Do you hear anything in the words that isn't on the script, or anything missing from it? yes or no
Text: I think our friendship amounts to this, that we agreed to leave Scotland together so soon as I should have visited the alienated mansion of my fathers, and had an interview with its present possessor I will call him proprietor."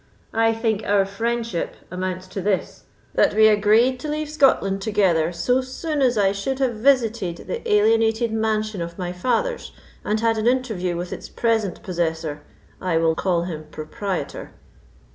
no